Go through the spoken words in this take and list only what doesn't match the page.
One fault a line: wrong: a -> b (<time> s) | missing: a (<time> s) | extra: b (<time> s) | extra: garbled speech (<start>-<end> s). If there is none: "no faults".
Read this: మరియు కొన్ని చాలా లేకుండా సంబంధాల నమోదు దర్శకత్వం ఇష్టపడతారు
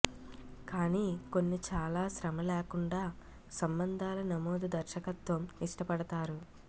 wrong: మరియు -> కానీ (0.7 s)
extra: శ్రమ (2.1 s)